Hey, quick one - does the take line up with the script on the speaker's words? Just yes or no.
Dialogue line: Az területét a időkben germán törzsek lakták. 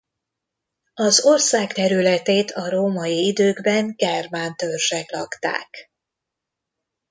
no